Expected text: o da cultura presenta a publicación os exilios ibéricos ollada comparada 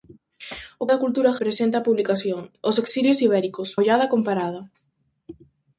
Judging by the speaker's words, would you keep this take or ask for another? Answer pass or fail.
pass